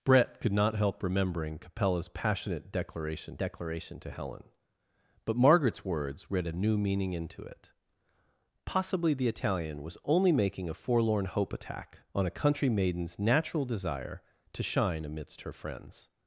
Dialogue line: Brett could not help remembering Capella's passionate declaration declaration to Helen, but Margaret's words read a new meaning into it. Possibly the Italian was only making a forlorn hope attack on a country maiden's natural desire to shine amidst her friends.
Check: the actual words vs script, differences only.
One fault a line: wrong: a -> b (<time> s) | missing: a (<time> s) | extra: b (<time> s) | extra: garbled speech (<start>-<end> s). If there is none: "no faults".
no faults